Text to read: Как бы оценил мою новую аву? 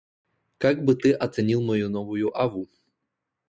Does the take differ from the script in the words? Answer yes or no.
yes